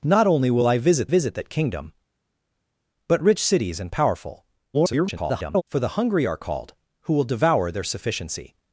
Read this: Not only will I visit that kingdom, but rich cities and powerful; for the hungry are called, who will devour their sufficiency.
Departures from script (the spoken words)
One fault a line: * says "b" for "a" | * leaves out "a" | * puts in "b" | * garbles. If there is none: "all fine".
* puts in "visit"
* garbles